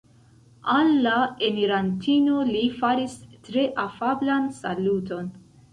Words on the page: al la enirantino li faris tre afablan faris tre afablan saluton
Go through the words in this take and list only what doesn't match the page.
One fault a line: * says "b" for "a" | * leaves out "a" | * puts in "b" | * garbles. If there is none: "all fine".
* leaves out "faris tre afablan"